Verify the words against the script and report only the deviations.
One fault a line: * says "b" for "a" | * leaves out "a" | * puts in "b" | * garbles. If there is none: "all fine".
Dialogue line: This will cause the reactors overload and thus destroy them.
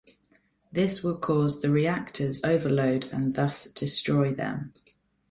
all fine